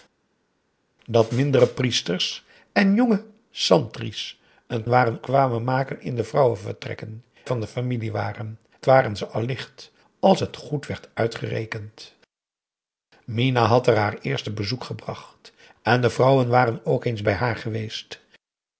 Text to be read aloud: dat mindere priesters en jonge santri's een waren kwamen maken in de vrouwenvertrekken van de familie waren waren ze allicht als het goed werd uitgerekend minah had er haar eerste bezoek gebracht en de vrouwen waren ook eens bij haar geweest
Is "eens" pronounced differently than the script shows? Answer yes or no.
no